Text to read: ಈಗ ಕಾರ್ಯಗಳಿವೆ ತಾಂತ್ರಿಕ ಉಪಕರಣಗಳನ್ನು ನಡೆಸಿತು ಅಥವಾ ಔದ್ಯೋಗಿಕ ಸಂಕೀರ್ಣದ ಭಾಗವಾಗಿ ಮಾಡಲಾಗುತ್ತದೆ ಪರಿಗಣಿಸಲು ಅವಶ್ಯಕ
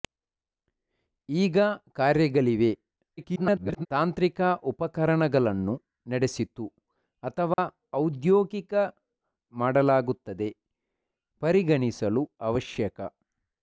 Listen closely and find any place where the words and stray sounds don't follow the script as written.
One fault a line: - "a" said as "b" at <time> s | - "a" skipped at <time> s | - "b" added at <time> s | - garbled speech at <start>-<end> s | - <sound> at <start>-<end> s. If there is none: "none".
- garbled speech at 3.2-3.9 s
- dropout at 7.5-7.6 s
- "ಸಂಕೀರ್ಣದ ಭಾಗವಾಗಿ" skipped at 8.7 s